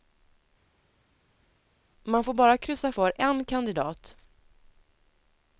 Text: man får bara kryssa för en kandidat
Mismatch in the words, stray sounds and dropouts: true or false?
false